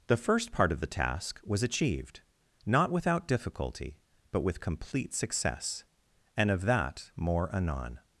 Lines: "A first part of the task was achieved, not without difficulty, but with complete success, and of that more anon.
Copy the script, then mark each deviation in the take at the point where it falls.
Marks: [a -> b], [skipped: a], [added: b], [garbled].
["A -> The] first part of the task was achieved, not without difficulty, but with complete success, and of that more anon.